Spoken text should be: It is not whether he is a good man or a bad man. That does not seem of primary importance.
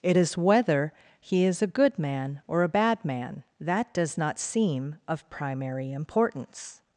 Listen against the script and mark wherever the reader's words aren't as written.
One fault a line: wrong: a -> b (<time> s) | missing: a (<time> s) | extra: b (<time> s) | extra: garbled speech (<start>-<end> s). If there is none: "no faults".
missing: not (0.4 s)